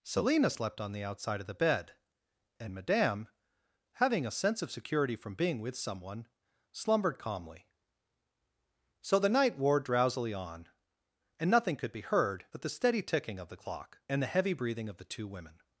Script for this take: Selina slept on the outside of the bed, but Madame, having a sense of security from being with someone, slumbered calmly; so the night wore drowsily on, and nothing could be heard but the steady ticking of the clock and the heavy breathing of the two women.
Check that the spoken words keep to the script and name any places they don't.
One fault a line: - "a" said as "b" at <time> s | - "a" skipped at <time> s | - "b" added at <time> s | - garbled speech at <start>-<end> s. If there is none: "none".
- "but" said as "and" at 2.6 s